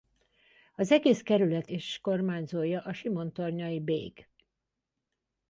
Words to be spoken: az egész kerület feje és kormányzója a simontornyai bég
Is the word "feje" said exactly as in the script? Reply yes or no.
no